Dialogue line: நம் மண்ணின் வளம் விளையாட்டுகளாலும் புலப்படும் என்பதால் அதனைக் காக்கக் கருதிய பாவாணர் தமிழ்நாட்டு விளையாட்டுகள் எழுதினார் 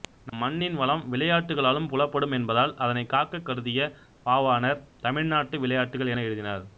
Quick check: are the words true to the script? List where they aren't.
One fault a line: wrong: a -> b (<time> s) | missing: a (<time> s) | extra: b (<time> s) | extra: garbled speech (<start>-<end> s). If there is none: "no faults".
extra: என (6.1 s)